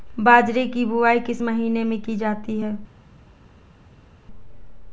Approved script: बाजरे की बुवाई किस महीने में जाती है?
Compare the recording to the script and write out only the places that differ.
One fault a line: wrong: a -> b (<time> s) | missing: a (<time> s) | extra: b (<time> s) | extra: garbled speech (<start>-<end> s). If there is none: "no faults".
extra: की (2.0 s)